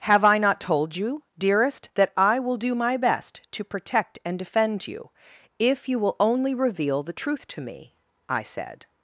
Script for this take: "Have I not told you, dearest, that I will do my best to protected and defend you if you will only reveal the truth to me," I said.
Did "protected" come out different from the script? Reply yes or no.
yes